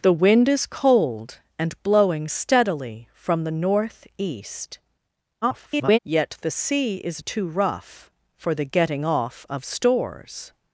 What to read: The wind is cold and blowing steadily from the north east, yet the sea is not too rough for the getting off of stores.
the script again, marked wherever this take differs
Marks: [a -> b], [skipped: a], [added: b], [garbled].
The wind is cold and blowing steadily from the north east, [garbled] yet the sea is [skipped: not] too rough for the getting off of stores.